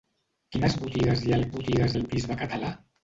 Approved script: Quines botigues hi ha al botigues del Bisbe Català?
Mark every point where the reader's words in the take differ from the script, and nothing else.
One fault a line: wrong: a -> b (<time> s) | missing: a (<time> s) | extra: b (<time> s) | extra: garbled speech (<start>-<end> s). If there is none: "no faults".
no faults